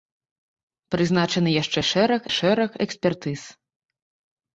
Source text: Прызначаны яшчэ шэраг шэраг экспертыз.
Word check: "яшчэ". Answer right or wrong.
right